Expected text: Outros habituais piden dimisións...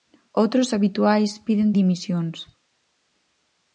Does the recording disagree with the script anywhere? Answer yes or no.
no